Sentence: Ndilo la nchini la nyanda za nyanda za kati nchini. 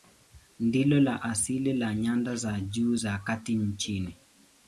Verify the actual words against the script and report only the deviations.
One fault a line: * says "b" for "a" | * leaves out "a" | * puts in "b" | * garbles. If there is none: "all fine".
* says "asili" for "nchini"
* says "juu" for "nyanda"